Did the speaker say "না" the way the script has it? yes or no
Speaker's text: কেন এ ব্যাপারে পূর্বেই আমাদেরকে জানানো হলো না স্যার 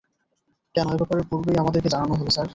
no